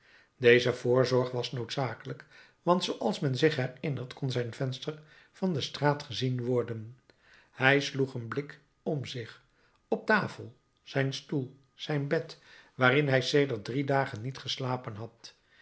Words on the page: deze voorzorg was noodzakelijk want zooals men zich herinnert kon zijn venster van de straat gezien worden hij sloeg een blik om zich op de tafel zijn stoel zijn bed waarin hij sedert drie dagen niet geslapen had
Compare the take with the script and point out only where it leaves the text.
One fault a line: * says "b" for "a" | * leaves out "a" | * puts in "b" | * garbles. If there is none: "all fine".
* leaves out "de"